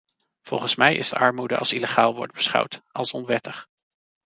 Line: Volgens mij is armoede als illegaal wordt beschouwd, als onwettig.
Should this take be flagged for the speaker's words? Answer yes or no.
no